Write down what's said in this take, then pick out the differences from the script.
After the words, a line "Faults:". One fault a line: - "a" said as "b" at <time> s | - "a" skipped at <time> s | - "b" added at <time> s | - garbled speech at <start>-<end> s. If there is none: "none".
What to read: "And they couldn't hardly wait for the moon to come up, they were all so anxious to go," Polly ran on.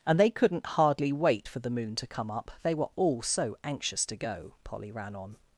"And they couldn't hardly wait for the moon to come up, they were all so anxious to go," Polly ran on.
Faults:
none